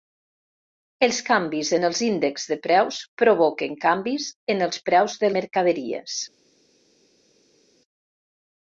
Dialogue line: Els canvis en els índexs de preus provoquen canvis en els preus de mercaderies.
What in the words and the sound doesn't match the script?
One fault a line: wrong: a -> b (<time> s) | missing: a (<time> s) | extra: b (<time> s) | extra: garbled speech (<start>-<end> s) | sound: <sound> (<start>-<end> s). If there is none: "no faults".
no faults